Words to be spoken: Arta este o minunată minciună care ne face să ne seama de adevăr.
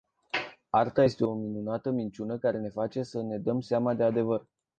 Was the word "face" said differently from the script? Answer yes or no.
no